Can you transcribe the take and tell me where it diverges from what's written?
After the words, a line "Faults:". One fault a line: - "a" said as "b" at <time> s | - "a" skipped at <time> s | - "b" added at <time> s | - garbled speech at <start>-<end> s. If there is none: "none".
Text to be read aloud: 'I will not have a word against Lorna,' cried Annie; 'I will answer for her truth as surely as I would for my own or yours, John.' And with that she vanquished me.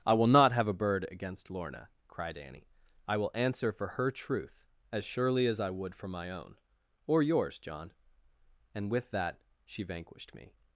'I will not have a bird against Lorna,' cried Annie; 'I will answer for her truth as surely as I would for my own or yours, John.' And with that she vanquished me.
Faults:
- "word" said as "bird" at 0.7 s